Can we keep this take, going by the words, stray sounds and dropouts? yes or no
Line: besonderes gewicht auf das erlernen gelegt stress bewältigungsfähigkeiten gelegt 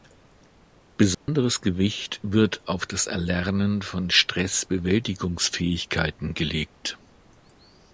no